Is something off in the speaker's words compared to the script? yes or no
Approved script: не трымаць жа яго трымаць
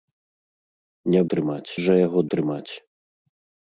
no